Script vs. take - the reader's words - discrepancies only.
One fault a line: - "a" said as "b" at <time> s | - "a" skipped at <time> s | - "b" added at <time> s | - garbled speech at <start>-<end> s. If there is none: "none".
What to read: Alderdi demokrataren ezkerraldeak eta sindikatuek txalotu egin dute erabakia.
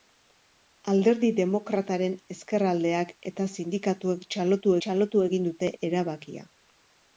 - "txalotu" added at 4.9 s